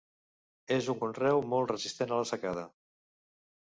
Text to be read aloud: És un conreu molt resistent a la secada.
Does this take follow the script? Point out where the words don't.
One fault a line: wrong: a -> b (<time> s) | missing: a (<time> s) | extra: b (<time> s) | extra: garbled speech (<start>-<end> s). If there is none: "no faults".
no faults